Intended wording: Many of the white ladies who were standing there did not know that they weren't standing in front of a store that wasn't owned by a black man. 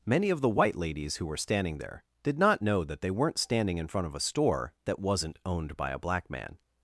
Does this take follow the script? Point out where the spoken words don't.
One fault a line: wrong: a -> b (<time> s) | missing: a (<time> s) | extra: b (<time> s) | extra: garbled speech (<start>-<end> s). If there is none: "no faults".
no faults